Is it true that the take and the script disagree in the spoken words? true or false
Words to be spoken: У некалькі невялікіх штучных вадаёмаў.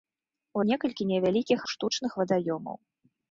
false